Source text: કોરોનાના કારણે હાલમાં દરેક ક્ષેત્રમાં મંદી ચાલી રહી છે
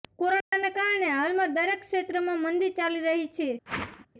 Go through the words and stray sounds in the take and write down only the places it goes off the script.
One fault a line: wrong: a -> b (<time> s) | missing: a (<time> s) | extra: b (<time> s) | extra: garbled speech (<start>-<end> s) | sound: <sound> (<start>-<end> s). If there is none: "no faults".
sound: dropout (0.4-0.5 s)
sound: whoosh (3.7-4.1 s)